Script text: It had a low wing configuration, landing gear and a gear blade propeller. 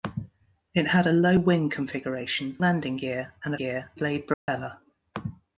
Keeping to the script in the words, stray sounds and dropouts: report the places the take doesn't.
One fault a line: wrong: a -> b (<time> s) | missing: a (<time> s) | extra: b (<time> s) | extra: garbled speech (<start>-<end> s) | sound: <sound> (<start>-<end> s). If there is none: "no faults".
sound: dropout (4.3-4.5 s)